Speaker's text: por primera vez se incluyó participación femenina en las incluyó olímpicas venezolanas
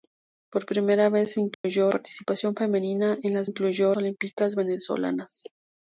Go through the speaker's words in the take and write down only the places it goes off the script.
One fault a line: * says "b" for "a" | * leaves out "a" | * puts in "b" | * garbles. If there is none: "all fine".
all fine